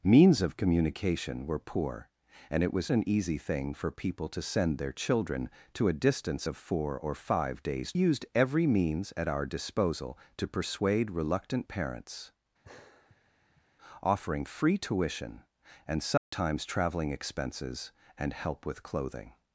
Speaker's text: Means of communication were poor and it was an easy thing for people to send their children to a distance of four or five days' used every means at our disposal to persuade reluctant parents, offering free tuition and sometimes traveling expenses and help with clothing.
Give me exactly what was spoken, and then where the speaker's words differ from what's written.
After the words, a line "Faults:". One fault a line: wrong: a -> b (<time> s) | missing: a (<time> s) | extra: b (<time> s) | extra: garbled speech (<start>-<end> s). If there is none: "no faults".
Means of communication were poor and it was an easy thing for people to send their children to a distance of four or five days' used every means at our disposal to persuade reluctant parents, offering free tuition and sometimes traveling expenses and help with clothing.
Faults:
no faults